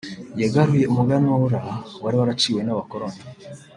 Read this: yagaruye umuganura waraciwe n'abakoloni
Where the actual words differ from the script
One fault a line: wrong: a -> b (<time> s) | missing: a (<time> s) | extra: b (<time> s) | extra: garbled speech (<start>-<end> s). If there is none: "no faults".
extra: wari (2.0 s)